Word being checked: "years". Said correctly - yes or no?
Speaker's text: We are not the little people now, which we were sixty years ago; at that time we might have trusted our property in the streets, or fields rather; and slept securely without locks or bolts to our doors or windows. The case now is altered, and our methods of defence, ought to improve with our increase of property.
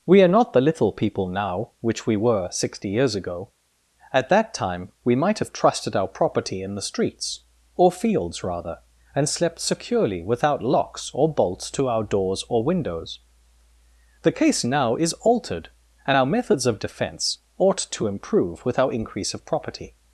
yes